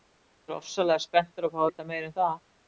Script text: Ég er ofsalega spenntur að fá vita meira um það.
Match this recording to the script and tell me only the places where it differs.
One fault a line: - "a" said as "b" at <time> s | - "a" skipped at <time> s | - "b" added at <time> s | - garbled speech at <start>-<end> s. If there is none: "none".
none